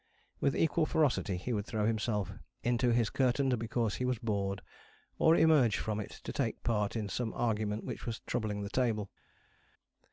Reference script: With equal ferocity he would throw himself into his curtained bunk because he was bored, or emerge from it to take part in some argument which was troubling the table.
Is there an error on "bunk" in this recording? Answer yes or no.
yes